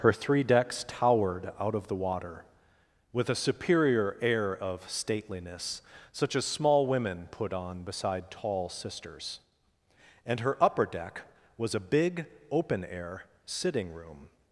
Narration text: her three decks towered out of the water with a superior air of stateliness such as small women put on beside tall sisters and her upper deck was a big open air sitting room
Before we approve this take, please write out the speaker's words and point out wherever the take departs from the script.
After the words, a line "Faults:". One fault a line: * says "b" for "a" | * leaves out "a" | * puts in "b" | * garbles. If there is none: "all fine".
her three decks towered out of the water with a superior air of stateliness such as small women put on beside tall sisters and her upper deck was a big open air sitting room
Faults:
all fine